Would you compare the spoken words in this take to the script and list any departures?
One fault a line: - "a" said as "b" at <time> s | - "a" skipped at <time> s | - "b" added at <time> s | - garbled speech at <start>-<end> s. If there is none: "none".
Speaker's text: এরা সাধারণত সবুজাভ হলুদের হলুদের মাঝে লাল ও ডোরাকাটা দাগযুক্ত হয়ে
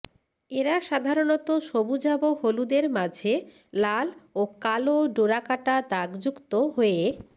- "হলুদের" skipped at 2.9 s
- "কালো" added at 4.6 s